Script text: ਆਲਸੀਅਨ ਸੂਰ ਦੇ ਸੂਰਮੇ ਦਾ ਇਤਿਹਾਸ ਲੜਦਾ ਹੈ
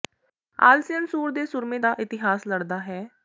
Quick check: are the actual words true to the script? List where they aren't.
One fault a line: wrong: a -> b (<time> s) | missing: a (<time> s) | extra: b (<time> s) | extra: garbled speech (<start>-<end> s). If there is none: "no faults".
no faults